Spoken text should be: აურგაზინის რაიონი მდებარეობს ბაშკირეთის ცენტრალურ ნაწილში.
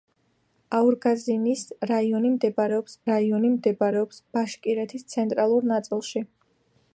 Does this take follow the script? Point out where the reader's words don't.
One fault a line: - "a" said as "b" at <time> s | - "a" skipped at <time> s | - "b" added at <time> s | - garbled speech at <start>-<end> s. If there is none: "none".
- "რაიონი მდებარეობს" added at 3.1 s